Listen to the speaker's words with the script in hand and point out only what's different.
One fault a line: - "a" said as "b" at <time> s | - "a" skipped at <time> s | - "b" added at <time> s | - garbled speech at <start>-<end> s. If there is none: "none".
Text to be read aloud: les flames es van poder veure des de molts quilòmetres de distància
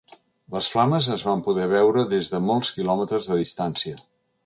none